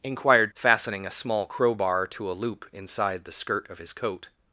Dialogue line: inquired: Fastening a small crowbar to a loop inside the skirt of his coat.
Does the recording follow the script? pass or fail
pass